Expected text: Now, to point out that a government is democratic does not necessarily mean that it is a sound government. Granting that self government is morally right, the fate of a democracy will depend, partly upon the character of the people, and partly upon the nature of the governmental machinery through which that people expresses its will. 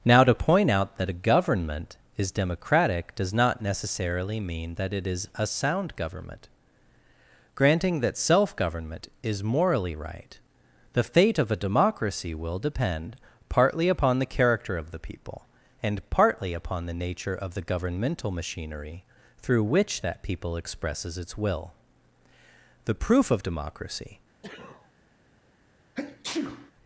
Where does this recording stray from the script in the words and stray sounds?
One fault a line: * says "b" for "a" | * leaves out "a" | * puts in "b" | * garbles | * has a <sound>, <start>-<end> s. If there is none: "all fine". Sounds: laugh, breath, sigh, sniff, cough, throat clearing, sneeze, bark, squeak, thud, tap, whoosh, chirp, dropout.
* puts in "The proof of democracy"
* has a sneeze, 24.4-24.9 s
* has a sneeze, 25.9-26.7 s